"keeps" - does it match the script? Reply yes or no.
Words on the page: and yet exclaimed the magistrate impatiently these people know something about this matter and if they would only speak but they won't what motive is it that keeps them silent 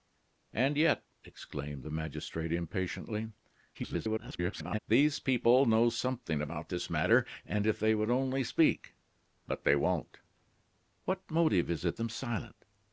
no